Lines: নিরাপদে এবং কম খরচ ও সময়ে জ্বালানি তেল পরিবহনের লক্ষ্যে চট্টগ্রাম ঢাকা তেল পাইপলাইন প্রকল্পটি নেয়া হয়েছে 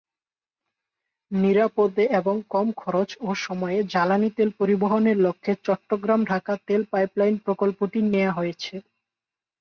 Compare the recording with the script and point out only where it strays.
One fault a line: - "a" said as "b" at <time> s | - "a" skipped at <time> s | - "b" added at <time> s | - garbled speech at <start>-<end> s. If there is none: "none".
none